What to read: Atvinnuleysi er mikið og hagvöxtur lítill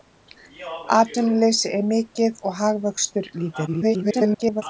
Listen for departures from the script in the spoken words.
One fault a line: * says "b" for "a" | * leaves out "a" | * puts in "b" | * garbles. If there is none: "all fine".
* garbles